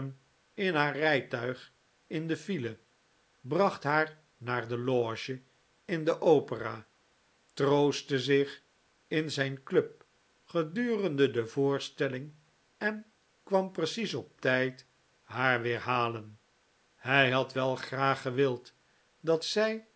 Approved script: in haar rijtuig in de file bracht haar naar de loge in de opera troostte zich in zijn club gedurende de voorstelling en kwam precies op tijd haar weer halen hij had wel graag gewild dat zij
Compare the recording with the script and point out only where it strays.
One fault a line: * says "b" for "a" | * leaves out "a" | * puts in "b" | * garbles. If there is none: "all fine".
all fine